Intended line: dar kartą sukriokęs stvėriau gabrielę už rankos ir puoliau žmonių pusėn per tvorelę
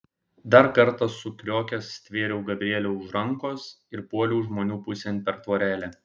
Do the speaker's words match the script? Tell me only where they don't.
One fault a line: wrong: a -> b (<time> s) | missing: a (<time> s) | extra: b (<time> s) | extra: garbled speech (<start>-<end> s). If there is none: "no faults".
no faults